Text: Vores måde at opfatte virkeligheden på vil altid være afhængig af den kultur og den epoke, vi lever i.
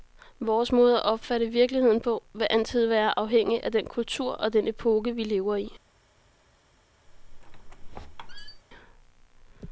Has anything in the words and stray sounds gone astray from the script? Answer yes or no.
yes